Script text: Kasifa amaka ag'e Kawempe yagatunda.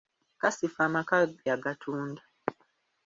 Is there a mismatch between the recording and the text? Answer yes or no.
yes